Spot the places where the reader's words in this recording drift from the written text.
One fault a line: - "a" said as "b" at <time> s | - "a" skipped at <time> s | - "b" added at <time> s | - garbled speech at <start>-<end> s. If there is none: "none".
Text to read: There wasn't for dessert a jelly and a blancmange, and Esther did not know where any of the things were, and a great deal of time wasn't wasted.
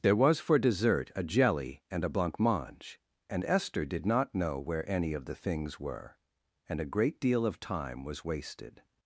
- "wasn't" said as "was" at 0.1 s
- "wasn't" said as "was" at 8.0 s